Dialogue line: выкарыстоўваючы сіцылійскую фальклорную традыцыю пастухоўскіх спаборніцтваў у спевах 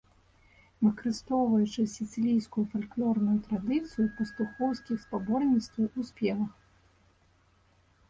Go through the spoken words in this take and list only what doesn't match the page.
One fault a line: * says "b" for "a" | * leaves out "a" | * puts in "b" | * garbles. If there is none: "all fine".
all fine